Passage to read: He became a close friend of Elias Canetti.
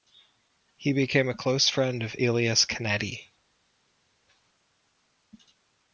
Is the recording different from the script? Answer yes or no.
no